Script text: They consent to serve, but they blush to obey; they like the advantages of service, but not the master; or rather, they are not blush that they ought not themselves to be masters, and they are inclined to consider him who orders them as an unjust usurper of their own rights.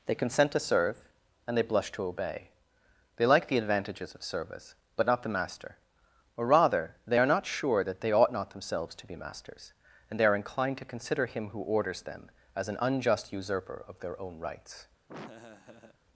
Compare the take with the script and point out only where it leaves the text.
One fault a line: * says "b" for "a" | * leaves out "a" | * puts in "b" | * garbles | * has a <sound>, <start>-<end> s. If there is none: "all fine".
* says "and" for "but"
* says "sure" for "blush"
* has a laugh, 15.1-16.0 s